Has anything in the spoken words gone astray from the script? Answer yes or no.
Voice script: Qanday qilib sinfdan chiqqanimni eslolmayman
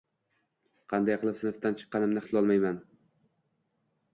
no